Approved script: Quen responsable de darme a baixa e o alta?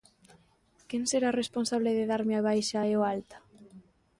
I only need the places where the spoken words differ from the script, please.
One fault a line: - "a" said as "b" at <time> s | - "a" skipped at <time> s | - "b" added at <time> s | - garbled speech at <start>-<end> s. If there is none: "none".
- "será" added at 1.1 s